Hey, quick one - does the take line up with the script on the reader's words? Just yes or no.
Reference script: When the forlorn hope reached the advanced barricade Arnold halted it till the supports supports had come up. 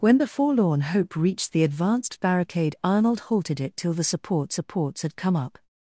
yes